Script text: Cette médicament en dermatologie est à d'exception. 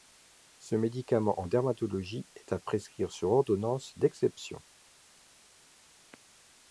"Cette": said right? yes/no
no